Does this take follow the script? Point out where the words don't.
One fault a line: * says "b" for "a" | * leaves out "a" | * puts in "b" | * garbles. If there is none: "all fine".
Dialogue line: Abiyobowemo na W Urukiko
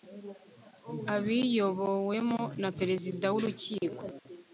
* puts in "Perezida"